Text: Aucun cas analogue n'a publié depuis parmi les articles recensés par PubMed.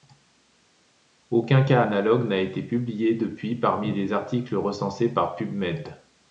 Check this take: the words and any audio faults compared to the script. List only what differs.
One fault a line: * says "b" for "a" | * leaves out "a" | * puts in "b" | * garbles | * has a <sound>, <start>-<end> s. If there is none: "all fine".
* puts in "été"